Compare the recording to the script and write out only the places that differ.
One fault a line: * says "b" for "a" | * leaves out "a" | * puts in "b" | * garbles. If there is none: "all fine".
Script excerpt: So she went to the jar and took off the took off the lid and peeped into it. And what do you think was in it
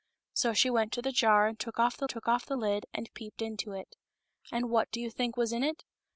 all fine